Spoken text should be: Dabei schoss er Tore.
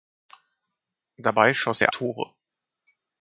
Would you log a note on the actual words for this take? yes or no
no